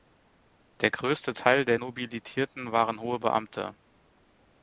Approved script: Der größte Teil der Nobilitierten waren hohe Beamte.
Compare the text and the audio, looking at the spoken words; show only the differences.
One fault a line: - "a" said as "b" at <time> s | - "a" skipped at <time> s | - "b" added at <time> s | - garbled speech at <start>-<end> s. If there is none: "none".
none